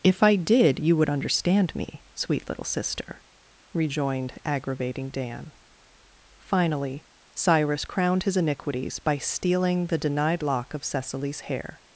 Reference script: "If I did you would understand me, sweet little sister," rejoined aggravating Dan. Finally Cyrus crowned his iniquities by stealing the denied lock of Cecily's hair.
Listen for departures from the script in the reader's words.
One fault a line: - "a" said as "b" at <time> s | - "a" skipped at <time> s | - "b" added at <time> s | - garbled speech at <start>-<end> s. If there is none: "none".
none